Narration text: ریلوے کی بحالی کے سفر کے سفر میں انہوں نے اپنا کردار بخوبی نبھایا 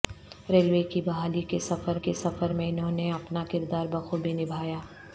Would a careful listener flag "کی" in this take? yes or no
no